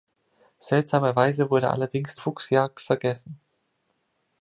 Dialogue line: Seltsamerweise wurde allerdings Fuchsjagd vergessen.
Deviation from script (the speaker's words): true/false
false